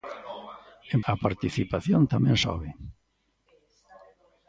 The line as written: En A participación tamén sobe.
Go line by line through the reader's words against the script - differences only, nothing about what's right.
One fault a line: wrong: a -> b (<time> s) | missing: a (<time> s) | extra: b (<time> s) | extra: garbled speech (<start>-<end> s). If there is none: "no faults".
no faults